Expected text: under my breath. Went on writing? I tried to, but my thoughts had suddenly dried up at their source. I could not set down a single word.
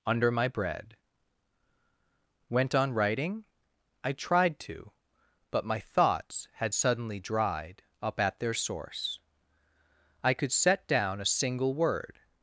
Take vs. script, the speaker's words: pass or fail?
fail